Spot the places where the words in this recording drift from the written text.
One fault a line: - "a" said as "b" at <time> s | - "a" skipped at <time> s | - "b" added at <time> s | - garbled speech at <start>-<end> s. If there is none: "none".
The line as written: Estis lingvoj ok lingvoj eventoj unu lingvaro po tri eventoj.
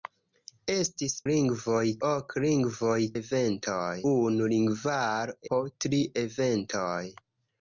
none